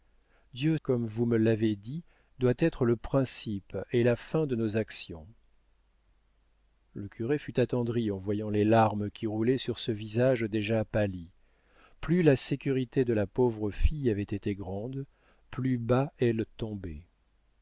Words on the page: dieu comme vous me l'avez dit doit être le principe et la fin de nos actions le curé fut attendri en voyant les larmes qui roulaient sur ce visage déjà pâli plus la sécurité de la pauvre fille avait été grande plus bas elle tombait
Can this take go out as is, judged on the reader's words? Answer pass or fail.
pass